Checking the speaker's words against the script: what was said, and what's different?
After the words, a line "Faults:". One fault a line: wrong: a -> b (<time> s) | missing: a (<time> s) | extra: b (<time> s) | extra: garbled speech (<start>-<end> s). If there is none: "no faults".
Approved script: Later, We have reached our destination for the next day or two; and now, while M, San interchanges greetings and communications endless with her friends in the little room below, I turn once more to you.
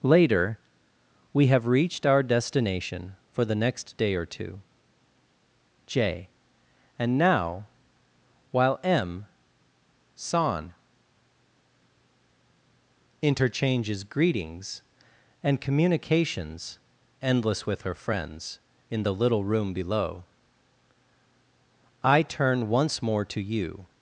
Later, We have reached our destination for the next day or two; j and now, while M, San interchanges greetings and communications endless with her friends in the little room below, I turn once more to you.
Faults:
extra: j (5.9 s)